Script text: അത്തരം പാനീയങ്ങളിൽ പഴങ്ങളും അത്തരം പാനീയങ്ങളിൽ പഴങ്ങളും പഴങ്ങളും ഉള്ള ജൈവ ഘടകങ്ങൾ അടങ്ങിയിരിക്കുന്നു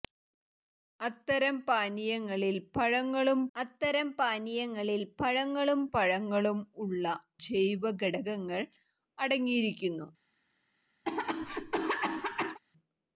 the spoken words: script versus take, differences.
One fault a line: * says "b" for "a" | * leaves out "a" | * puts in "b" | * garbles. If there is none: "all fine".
all fine